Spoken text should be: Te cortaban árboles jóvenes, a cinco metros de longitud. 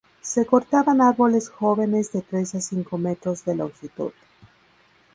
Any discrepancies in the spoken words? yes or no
yes